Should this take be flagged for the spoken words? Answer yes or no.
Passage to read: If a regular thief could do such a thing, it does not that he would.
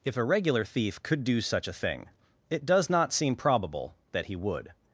yes